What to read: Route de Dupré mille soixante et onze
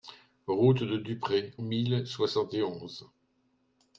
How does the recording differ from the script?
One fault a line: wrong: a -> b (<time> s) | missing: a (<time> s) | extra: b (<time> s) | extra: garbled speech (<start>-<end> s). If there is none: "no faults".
no faults